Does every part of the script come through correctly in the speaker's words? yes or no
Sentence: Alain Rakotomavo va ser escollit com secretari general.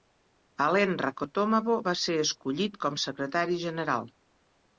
yes